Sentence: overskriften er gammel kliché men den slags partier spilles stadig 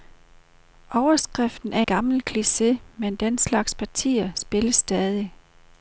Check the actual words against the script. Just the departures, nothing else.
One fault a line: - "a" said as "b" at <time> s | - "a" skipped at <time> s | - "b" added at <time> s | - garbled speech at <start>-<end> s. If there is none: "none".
none